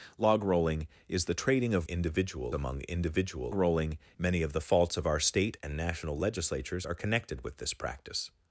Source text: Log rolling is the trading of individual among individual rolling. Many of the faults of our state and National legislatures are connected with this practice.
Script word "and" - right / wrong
right